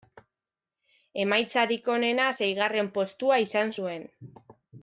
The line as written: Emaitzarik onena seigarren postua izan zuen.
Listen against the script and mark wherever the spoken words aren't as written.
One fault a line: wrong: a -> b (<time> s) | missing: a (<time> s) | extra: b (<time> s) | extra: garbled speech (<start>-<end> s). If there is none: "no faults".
no faults